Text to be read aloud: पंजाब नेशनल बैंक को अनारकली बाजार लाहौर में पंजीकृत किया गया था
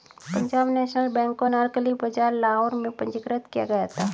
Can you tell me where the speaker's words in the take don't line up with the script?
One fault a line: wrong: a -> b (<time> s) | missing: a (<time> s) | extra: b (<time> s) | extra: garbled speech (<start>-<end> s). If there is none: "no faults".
no faults